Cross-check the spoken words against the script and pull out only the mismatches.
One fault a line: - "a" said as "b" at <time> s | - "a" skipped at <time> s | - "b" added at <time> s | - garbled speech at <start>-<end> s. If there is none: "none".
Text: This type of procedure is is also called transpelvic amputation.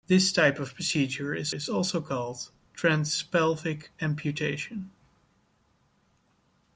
none